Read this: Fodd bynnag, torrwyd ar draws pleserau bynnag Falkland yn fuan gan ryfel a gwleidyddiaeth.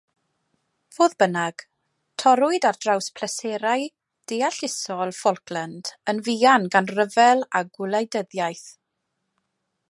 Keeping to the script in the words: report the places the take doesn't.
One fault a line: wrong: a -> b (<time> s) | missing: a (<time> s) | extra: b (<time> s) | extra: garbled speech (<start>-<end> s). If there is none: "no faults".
wrong: bynnag -> deallusol (4.3 s)